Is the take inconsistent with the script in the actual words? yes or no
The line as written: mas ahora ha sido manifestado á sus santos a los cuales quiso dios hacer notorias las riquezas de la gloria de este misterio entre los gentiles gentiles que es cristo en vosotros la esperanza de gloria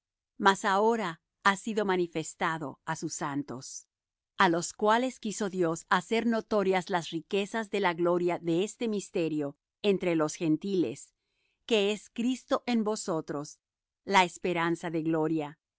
yes